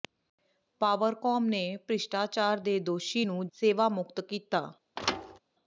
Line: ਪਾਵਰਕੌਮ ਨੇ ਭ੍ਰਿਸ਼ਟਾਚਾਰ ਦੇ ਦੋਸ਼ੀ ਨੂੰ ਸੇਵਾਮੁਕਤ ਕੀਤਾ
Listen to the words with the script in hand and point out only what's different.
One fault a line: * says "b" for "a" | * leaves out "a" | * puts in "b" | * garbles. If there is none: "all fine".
all fine